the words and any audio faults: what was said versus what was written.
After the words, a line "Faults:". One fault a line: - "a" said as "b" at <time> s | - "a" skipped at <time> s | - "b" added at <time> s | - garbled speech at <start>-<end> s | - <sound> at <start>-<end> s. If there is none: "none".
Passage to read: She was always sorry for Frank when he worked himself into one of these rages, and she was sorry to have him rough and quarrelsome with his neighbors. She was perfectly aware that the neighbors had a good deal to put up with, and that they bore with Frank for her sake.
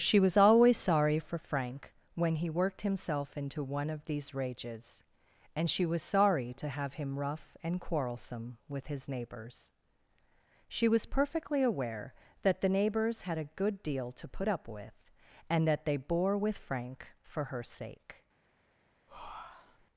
She was always sorry for Frank when he worked himself into one of these rages, and she was sorry to have him rough and quarrelsome with his neighbors. She was perfectly aware that the neighbors had a good deal to put up with, and that they bore with Frank for her sake.
Faults:
- breath at 19.1-19.9 s